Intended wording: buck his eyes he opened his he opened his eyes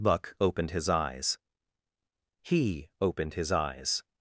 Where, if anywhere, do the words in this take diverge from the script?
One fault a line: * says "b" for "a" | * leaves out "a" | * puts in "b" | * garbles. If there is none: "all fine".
* puts in "opened"
* leaves out "he opened his"